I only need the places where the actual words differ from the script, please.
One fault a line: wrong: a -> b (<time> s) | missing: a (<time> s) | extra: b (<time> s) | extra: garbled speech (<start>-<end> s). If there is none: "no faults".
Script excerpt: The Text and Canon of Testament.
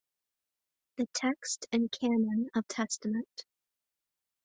no faults